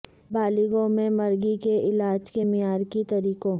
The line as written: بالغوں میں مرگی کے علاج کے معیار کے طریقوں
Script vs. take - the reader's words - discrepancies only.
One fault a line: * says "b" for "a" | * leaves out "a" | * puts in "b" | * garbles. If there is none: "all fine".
all fine